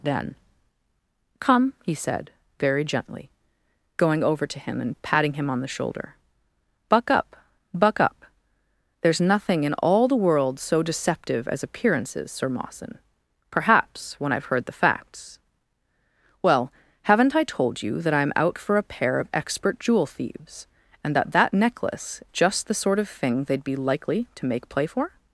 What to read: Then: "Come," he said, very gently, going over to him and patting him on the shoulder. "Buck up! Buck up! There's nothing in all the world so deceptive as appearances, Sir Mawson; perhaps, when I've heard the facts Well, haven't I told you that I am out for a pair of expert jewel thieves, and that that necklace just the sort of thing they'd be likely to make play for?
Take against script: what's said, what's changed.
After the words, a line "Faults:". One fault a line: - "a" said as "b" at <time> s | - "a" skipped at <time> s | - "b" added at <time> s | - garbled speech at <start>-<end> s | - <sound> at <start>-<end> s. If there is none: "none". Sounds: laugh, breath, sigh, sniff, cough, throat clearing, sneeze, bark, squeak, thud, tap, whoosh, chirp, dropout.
Then: "Come," he said, very gently, going over to him and patting him on the shoulder. "Buck up! Buck up! There's nothing in all the world so deceptive as appearances, Sir Mawson; perhaps, when I've heard the facts Well, haven't I told you that I am out for a pair of expert jewel thieves, and that that necklace just the sort of thing they'd be likely to make play for?
Faults:
none